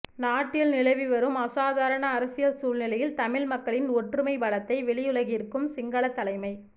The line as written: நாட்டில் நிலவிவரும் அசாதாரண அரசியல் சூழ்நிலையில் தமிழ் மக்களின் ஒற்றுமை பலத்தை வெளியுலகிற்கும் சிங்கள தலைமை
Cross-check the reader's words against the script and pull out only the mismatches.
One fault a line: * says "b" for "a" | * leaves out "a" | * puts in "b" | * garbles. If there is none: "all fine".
all fine